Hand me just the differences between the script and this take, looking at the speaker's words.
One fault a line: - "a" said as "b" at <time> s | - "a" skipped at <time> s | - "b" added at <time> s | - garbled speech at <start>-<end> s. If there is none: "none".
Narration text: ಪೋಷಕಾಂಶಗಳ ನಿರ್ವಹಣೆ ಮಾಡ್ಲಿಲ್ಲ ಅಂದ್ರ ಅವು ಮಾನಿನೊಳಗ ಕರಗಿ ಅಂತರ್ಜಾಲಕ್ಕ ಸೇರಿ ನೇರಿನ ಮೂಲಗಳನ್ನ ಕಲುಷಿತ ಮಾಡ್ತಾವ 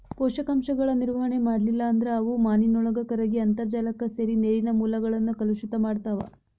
none